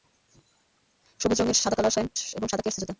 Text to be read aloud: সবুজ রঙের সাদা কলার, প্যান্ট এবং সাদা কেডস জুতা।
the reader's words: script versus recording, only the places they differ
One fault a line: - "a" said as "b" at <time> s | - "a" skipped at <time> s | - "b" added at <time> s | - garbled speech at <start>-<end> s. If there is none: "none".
none